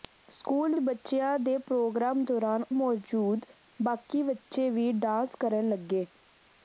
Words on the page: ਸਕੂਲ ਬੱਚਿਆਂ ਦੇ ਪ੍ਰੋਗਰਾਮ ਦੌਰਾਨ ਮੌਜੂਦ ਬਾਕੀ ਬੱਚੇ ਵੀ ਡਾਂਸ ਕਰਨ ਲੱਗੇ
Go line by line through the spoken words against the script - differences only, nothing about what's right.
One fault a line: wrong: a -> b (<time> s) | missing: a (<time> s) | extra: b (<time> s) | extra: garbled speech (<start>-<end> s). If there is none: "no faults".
no faults